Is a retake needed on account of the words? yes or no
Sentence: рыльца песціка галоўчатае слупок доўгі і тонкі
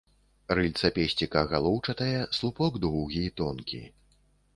no